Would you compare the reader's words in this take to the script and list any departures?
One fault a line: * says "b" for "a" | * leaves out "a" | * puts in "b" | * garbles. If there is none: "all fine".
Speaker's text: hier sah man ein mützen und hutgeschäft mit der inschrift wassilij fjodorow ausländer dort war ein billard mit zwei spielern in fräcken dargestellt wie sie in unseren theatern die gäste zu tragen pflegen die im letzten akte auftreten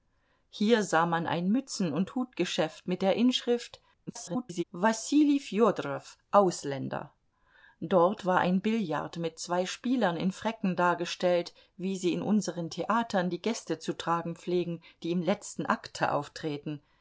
* garbles